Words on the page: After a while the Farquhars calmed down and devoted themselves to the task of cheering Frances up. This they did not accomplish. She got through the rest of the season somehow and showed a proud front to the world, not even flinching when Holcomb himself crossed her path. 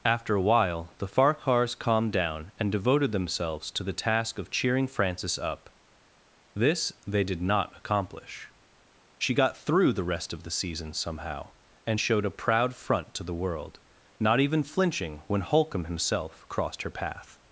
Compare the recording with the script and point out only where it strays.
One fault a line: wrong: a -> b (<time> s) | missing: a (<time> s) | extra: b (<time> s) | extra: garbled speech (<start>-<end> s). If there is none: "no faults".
no faults